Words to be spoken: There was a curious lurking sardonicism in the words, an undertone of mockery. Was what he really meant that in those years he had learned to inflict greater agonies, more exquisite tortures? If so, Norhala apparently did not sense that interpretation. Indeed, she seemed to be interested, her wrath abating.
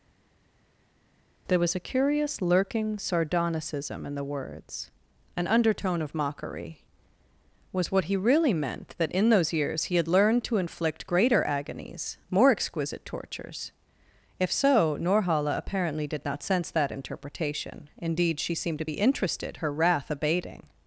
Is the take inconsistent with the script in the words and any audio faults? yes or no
no